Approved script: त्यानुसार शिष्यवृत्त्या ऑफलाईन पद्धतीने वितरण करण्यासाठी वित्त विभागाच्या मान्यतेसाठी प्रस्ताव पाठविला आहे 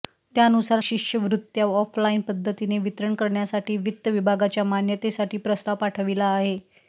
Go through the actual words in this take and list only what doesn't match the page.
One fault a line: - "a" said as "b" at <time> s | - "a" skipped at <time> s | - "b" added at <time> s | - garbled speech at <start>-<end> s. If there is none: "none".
none